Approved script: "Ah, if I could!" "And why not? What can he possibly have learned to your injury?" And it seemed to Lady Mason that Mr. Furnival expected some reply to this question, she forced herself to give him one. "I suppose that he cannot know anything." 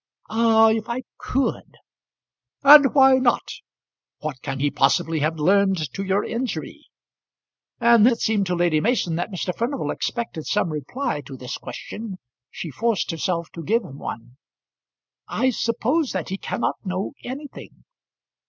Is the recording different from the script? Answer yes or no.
no